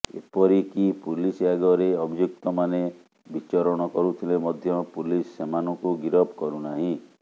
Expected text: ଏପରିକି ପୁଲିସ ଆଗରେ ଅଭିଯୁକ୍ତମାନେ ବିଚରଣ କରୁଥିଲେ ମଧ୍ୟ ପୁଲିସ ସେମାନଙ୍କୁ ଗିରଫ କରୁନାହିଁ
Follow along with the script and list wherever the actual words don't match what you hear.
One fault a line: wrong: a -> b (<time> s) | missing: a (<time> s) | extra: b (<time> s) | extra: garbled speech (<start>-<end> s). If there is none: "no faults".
no faults